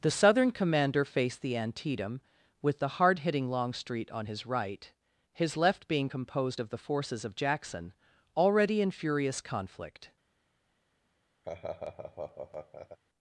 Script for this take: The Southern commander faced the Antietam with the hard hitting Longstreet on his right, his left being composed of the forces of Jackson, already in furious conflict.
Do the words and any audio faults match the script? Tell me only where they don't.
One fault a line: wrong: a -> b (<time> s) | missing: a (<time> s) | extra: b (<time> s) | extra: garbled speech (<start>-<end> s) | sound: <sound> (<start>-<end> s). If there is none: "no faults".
sound: laugh (11.4-13.0 s)